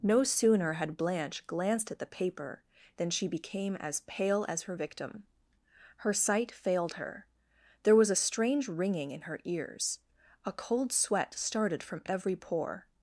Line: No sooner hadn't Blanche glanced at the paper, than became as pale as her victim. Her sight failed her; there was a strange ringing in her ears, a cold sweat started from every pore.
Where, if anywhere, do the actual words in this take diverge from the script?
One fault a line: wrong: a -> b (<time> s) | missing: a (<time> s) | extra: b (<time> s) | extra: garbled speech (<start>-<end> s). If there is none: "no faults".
wrong: hadn't -> had (0.7 s)
extra: she (3.1 s)